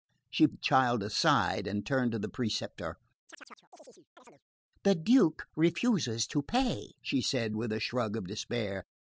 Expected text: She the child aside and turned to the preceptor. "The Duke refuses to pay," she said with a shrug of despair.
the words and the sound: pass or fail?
fail